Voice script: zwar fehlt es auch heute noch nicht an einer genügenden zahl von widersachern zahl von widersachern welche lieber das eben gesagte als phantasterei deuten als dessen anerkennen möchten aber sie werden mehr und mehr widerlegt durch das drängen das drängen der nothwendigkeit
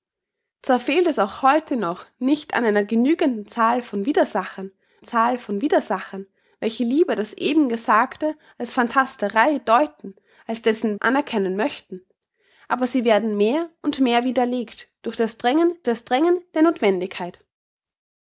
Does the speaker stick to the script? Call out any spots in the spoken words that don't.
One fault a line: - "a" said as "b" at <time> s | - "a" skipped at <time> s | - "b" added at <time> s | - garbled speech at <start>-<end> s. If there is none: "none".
none